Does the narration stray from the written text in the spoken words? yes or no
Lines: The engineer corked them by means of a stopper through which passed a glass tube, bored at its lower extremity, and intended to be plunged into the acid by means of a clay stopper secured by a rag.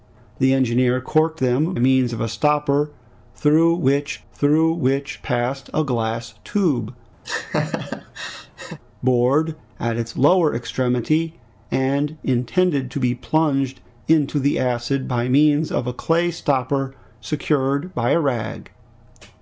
yes